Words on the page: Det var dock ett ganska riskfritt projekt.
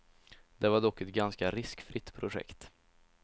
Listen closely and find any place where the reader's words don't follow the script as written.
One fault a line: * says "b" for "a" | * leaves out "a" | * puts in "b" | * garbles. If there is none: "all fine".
all fine